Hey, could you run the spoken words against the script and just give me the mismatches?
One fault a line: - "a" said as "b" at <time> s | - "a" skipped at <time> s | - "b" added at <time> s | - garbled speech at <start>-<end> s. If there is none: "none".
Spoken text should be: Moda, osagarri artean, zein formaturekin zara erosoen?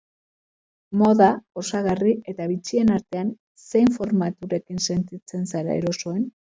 - "eta bitxien" added at 2.4 s
- "sentitzen" added at 4.9 s